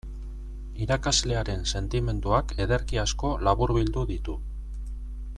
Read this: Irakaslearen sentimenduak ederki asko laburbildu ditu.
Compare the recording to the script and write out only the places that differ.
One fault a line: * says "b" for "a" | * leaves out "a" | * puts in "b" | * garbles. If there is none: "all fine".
all fine